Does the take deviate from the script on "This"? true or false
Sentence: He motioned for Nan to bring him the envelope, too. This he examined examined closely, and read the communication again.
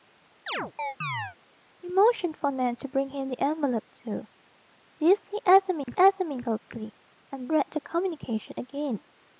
false